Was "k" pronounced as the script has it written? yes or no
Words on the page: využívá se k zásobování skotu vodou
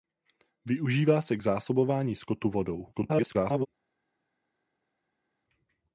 yes